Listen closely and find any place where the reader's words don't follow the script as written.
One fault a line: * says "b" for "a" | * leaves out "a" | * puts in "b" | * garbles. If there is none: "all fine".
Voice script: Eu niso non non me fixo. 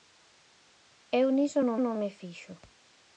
all fine